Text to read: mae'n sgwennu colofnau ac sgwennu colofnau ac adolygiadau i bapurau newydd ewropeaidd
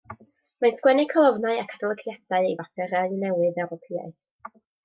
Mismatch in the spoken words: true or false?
true